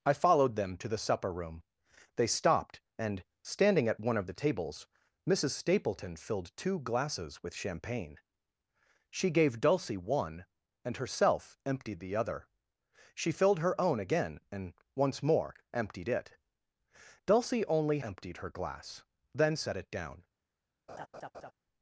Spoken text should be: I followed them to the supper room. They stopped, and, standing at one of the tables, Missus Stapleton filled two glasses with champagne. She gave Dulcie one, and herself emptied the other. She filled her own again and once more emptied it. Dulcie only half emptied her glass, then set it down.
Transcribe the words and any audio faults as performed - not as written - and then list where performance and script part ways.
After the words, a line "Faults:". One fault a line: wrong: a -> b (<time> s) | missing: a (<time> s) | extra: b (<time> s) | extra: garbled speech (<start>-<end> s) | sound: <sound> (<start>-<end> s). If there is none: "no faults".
I followed them to the supper room. They stopped, and, standing at one of the tables, Missus Stapleton filled two glasses with champagne. She gave Dulcie one, and herself emptied the other. She filled her own again and once more emptied it. Dulcie only emptied her glass, then set it down.
Faults:
missing: half (18.0 s)
sound: laugh (20.9-21.5 s)